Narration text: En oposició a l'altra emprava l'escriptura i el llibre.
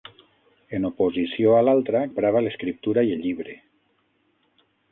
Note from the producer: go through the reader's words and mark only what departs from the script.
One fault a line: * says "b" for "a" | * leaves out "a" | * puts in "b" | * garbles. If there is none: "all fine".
all fine